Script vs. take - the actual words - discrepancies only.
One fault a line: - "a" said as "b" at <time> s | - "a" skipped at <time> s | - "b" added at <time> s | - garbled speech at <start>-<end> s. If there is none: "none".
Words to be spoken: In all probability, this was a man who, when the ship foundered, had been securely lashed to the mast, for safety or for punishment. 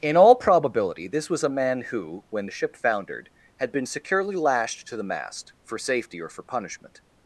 none